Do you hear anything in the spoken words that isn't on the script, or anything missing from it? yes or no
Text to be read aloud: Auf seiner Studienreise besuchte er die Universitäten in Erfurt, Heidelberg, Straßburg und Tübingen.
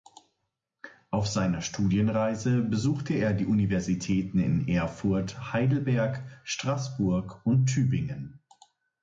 no